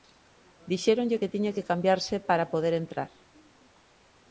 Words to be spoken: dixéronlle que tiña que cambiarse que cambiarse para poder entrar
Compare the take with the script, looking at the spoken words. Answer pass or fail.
fail